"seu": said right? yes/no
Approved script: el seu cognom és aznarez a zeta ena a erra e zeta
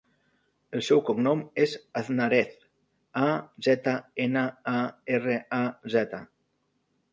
yes